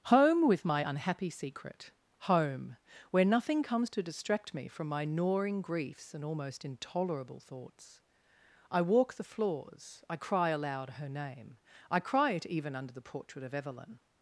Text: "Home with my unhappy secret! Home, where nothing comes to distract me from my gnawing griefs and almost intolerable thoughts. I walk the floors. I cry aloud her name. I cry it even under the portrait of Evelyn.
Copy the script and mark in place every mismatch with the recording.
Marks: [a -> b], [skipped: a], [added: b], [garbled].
"Home with my unhappy secret! Home, where nothing comes to distract me from my gnawing griefs and almost intolerable thoughts. I walk the floors. I cry aloud her name. I cry it even under the portrait of Evelyn.